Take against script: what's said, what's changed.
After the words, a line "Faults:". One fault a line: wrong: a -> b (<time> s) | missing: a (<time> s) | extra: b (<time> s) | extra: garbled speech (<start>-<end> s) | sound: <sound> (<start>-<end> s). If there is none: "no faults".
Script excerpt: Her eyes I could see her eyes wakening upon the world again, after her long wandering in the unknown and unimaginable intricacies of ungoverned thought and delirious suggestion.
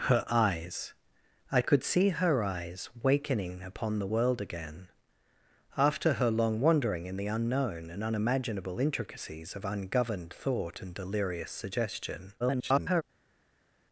Her eyes I could see her eyes wakening upon the world again, after her long wandering in the unknown and unimaginable intricacies of ungoverned thought and delirious suggestion. [garbled]
Faults:
extra: garbled speech (12.4-13.0 s)